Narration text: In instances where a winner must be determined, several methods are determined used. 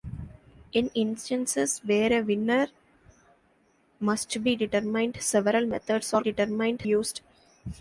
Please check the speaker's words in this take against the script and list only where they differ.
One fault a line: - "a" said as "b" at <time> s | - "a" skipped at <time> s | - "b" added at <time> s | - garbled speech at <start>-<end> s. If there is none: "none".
none